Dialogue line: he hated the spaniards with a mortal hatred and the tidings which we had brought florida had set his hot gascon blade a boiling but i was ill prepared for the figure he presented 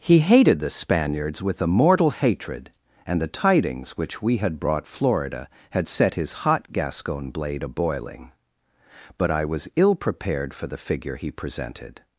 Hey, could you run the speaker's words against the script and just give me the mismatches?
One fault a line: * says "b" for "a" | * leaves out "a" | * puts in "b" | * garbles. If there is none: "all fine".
all fine